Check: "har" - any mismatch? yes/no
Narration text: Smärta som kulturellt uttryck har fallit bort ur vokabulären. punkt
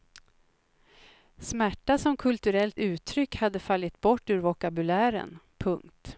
yes